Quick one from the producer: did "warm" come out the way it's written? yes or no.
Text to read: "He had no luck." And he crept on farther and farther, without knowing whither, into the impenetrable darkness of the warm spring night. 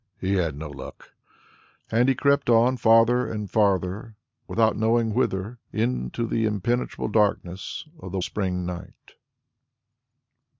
no